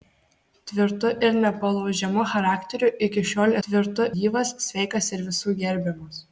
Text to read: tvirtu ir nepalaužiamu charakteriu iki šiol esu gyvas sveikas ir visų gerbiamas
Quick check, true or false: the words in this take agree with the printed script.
false